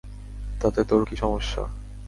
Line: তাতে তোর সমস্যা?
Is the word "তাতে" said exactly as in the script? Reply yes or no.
yes